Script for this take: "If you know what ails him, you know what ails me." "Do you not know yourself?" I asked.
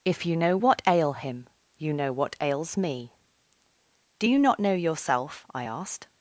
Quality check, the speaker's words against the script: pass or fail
fail